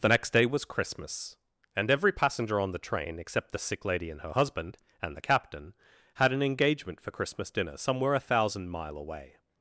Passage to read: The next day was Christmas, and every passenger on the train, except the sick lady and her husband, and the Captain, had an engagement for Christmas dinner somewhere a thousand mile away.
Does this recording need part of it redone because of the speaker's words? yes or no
no